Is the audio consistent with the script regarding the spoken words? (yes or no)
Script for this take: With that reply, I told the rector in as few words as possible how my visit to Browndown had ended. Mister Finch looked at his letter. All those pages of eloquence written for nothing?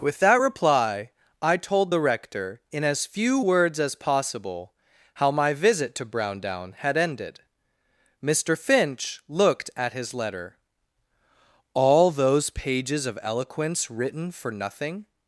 yes